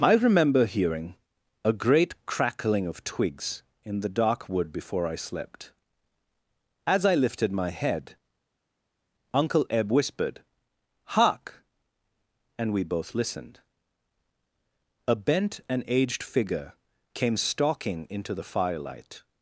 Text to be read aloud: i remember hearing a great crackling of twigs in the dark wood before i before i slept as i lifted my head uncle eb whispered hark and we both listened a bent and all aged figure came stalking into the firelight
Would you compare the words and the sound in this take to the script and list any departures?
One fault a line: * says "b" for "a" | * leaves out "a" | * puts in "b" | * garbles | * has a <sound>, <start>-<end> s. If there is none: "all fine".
* leaves out "before i"
* leaves out "all"